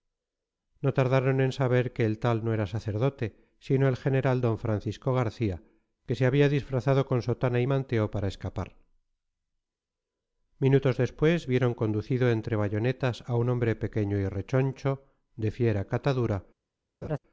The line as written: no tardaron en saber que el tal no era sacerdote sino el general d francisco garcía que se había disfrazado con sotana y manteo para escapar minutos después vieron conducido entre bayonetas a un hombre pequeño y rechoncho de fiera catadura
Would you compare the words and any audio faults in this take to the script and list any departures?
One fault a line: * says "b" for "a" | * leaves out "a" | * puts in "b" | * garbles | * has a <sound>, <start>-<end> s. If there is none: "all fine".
* has a laugh, 17.0-17.2 s